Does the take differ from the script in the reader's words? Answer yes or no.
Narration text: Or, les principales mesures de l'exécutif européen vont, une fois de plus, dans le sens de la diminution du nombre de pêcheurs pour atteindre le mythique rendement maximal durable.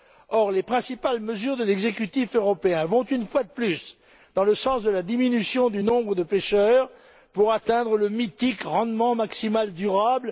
no